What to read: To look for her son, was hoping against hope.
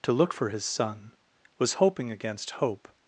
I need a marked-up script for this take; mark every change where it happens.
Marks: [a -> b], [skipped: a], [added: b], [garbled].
To look for [her -> his] son, was hoping against hope.